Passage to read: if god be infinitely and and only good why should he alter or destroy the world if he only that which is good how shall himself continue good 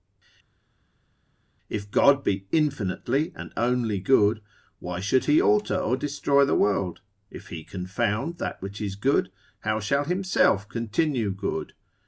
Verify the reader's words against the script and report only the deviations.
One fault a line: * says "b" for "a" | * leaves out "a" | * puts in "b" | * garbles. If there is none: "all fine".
* leaves out "and"
* says "confound" for "only"